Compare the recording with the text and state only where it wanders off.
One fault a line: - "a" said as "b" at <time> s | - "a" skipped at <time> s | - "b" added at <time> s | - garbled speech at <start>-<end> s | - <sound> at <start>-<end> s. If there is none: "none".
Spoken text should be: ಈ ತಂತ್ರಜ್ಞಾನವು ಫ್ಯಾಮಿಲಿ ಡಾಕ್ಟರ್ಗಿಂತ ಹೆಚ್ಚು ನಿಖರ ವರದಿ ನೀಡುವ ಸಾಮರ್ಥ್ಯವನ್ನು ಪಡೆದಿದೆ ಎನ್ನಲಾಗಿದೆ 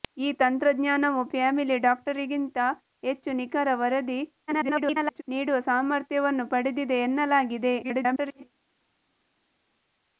- garbled speech at 4.5-5.2 s
- garbled speech at 7.8-8.4 s